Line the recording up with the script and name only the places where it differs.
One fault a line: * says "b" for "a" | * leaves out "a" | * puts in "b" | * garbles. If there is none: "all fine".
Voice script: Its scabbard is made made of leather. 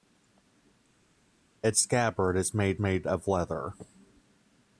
all fine